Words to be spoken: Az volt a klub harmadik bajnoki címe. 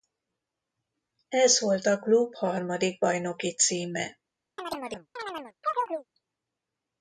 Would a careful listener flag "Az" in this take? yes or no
yes